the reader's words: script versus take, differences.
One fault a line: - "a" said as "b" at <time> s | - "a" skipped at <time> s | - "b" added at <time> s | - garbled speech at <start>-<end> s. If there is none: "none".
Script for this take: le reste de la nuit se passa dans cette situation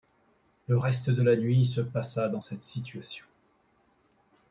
none